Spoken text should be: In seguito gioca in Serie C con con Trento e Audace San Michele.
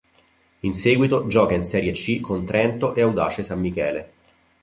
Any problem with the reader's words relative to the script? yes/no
yes